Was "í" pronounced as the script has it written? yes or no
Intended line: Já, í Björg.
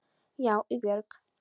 yes